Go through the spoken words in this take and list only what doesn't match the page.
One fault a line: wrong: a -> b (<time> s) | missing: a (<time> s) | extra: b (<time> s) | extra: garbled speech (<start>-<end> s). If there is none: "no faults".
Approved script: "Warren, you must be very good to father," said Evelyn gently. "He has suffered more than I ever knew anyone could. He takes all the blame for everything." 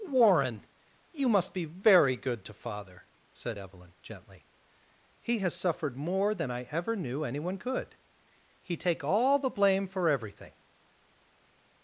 wrong: takes -> take (8.8 s)